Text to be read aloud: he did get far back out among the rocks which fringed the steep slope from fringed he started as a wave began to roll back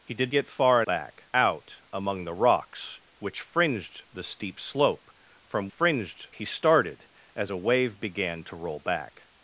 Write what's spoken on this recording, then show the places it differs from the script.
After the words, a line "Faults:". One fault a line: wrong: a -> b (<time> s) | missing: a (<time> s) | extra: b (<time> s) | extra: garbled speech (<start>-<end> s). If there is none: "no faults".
he did get far back out among the rocks which fringed the steep slope from fringed he started as a wave began to roll back
Faults:
no faults